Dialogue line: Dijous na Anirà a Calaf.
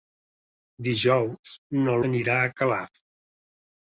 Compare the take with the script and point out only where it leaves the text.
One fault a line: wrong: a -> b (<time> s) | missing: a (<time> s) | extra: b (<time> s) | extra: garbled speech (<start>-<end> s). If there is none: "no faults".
no faults